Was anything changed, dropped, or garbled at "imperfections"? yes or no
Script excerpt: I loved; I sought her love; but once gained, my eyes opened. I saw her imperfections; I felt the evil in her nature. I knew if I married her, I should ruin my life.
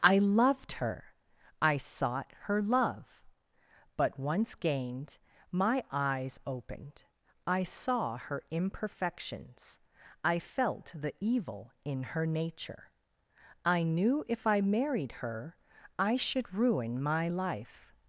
no